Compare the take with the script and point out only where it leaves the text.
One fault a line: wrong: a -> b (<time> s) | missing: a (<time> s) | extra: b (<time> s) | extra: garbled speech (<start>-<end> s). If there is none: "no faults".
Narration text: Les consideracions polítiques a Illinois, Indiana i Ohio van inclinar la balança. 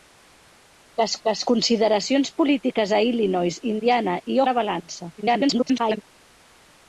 extra: les (1.3 s)
missing: Ohio van inclinar (4.4 s)
extra: garbled speech (5.2-6.0 s)